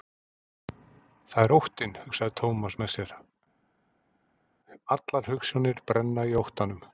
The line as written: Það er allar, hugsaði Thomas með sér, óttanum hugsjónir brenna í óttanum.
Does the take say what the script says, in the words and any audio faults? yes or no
no